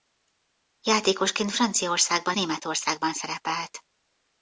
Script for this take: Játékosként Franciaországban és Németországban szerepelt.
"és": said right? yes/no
no